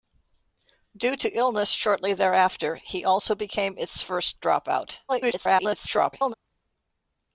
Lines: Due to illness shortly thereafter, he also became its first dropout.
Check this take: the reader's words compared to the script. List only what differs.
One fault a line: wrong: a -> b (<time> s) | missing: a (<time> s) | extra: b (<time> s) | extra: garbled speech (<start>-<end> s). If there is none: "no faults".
extra: garbled speech (5.1-6.3 s)